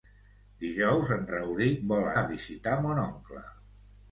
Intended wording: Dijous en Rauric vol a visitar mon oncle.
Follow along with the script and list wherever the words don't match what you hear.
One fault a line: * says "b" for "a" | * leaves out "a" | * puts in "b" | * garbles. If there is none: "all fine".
all fine